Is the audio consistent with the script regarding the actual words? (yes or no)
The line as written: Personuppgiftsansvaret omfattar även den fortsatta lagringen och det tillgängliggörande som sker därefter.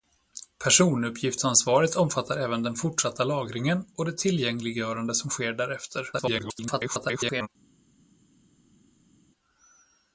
no